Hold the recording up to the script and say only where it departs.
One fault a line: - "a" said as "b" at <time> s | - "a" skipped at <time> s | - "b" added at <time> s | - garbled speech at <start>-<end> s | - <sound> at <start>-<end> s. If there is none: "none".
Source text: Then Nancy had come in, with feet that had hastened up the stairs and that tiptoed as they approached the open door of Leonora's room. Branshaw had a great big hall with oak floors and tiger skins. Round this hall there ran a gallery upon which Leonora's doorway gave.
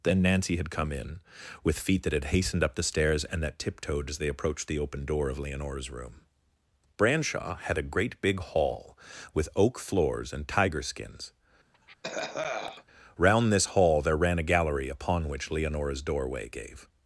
- cough at 11.7-12.8 s